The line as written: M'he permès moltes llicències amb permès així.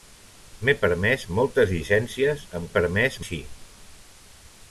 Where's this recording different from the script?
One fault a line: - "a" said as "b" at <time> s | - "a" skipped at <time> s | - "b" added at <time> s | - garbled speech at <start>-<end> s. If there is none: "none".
none